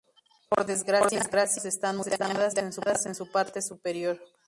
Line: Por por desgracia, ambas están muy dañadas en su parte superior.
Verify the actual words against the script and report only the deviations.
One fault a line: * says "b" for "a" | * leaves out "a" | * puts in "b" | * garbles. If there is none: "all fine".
* leaves out "por"